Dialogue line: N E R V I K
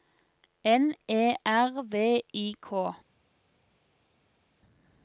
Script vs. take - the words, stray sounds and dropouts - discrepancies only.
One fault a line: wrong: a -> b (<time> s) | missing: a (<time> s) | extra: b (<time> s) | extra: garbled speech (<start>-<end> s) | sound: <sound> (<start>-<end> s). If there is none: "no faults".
no faults